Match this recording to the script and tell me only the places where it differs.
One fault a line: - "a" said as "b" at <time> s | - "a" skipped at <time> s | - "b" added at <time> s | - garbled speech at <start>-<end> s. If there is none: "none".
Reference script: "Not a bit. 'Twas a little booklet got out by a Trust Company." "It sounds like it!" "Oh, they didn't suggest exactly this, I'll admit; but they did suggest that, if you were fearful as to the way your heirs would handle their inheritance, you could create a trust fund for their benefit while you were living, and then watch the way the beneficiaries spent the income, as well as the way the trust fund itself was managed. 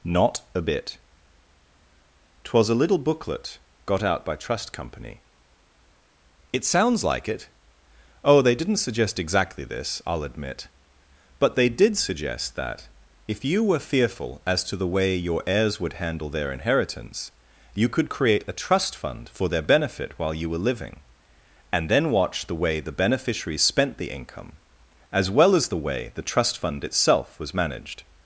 - "a" skipped at 4.3 s